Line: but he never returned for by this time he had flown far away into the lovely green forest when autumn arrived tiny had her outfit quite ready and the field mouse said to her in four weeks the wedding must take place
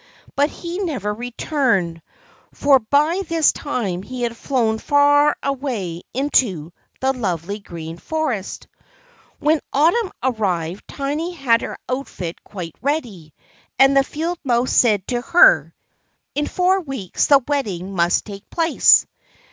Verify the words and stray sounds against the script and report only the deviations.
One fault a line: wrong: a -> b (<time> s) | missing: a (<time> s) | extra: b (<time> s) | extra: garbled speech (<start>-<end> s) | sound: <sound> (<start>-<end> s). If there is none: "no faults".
no faults